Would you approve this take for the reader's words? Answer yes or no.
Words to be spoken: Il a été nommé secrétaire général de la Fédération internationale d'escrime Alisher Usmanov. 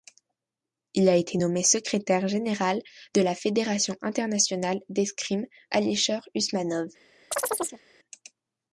yes